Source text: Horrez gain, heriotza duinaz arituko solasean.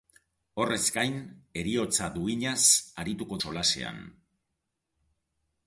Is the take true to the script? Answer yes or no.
yes